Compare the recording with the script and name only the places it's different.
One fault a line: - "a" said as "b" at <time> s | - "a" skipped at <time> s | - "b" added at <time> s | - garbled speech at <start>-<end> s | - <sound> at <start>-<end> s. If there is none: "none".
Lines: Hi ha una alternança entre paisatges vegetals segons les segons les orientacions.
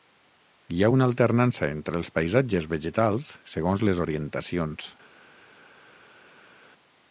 - "els" added at 2.0 s
- "segons les" skipped at 4.0 s